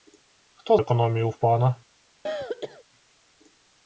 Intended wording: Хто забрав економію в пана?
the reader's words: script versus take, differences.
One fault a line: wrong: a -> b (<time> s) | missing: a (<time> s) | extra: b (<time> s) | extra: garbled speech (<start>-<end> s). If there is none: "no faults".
missing: забрав (0.8 s)